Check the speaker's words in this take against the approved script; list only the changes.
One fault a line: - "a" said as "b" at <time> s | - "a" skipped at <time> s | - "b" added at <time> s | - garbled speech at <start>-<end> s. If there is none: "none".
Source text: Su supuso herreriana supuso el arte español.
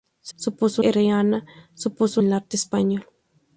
none